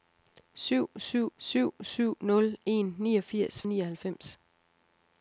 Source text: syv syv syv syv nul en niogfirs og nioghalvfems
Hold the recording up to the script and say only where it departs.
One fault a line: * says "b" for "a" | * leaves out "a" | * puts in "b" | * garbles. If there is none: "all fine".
all fine